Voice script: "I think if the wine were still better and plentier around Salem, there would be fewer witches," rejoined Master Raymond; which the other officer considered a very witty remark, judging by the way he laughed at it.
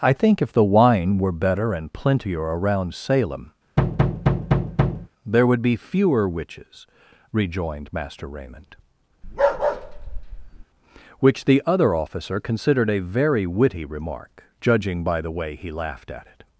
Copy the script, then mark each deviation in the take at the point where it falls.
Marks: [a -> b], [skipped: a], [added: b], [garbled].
"I think if the wine were [skipped: still] better and plentier around Salem, there would be fewer witches," rejoined Master Raymond; which the other officer considered a very witty remark, judging by the way he laughed at it.